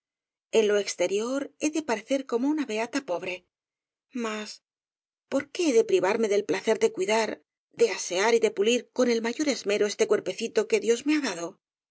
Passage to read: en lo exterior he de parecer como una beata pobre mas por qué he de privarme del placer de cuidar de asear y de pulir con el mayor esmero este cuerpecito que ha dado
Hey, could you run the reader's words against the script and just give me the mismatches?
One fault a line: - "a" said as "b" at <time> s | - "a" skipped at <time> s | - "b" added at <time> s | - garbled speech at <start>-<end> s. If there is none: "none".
- "dios me" added at 10.8 s